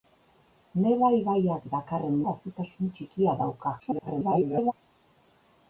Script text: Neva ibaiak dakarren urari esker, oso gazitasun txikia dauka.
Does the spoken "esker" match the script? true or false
false